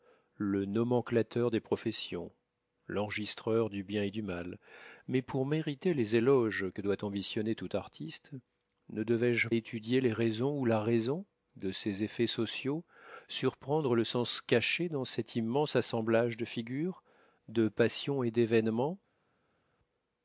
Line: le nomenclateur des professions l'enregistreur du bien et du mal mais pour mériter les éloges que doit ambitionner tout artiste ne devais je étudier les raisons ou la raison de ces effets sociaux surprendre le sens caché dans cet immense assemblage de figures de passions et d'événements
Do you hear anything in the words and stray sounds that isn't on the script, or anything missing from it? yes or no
no